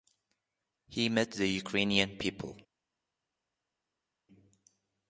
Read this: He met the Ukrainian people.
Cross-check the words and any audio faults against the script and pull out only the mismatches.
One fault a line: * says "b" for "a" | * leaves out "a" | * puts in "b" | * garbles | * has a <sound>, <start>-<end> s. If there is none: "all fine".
all fine